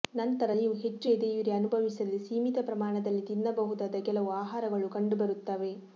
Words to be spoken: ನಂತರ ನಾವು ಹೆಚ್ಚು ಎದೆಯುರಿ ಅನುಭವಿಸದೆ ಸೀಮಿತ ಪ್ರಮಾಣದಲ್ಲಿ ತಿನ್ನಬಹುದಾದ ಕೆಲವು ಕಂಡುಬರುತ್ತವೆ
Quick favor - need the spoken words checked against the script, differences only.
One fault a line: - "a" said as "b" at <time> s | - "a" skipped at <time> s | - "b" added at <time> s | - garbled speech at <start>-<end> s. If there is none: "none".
- "ನಾವು" said as "ನೀವು" at 0.6 s
- "ಆಹಾರಗಳು" added at 4.4 s